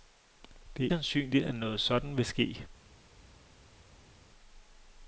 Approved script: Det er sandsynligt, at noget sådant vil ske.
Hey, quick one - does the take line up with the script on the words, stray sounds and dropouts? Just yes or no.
yes